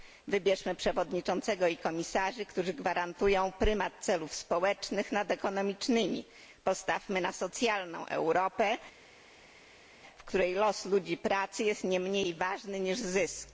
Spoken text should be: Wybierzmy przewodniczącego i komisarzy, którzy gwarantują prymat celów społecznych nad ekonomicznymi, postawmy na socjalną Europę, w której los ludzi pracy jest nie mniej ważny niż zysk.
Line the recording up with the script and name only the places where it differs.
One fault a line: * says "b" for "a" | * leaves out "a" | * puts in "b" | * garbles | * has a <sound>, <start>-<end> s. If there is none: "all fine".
all fine